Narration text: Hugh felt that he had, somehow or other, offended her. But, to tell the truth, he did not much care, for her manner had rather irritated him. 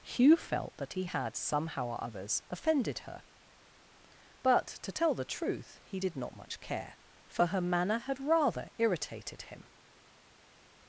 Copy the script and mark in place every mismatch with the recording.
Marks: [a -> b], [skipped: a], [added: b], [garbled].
Hugh felt that he had, somehow or [other, -> others] offended her. But, to tell the truth, he did not much care, for her manner had rather irritated him.